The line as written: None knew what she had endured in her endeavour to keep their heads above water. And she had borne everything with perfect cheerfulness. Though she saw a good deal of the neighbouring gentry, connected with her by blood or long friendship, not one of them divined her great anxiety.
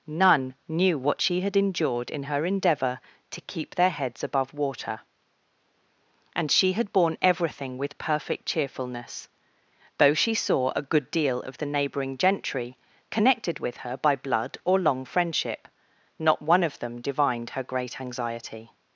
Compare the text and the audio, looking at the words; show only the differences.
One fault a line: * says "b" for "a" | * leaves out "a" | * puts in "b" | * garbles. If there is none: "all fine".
all fine